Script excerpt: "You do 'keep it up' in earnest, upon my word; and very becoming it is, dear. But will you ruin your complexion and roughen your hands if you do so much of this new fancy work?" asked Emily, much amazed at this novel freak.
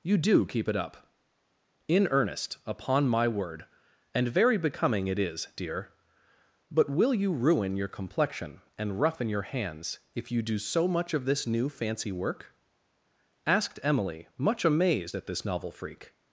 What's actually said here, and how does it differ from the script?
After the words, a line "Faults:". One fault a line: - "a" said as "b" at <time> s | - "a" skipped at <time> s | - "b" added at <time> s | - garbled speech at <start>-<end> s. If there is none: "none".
"You do 'keep it up' in earnest, upon my word; and very becoming it is, dear. But will you ruin your complexion and roughen your hands if you do so much of this new fancy work?" asked Emily, much amazed at this novel freak.
Faults:
none